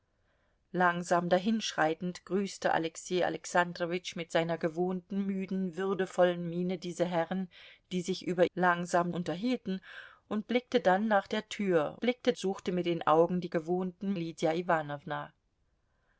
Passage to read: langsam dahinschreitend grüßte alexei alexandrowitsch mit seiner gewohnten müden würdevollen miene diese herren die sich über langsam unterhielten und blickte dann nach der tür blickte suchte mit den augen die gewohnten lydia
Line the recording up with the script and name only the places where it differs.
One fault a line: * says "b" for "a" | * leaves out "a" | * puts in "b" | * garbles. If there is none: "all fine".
all fine